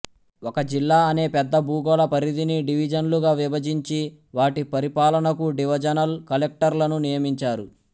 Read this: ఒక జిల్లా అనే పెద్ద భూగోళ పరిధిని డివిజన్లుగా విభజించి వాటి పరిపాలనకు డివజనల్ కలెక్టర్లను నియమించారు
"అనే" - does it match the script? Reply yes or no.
yes